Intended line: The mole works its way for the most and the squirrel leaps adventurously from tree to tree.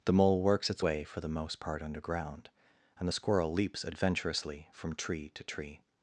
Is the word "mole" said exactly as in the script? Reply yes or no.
yes